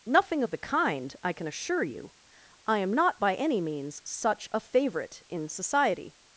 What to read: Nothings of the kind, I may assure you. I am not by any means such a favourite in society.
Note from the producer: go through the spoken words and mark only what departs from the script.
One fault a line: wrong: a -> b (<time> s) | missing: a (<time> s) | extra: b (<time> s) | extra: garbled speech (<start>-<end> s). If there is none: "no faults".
wrong: Nothings -> Nothing (0.1 s)
wrong: may -> can (1.3 s)